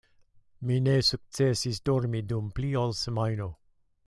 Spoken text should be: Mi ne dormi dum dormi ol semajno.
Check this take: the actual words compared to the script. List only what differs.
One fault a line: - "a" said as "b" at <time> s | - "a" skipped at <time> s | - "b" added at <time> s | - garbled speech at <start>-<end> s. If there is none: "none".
- "sukcesis" added at 1.1 s
- "dormi" said as "pli" at 2.6 s